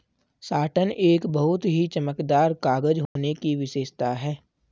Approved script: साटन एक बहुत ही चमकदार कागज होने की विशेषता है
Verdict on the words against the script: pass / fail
pass